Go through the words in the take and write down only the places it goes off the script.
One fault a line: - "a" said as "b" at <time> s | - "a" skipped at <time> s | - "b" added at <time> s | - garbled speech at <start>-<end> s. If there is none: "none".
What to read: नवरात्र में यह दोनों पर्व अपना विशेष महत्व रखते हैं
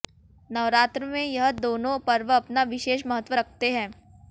none